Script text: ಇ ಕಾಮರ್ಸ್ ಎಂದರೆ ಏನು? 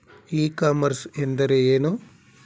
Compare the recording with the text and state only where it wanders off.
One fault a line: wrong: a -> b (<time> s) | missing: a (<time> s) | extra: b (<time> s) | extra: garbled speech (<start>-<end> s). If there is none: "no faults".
no faults